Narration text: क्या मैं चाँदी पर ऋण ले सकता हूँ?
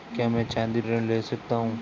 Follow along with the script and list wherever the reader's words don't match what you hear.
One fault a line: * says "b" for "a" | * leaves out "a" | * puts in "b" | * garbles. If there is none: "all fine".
* leaves out "पर"